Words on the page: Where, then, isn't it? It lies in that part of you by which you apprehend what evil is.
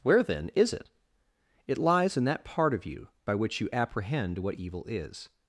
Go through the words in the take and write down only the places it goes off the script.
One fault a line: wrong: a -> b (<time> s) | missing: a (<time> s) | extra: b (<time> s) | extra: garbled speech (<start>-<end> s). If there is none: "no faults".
wrong: isn't -> is (0.6 s)